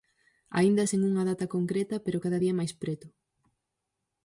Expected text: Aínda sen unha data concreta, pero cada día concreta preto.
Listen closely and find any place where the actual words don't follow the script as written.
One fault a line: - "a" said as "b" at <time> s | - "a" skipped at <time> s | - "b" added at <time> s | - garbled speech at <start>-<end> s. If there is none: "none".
- "concreta" said as "máis" at 2.6 s